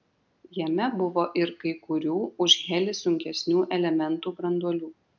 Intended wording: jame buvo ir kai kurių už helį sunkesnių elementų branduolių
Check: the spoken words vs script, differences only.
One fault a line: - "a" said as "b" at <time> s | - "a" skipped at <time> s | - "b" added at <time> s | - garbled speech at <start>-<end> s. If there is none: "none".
none